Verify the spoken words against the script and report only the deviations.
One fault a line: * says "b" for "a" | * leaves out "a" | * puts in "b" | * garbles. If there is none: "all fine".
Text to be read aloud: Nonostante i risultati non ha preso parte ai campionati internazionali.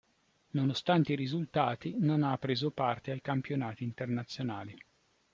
all fine